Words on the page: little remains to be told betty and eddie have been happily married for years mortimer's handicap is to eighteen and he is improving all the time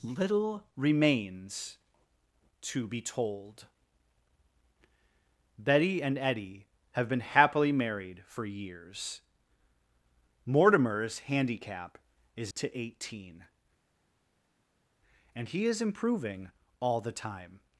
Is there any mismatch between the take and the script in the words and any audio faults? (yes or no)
no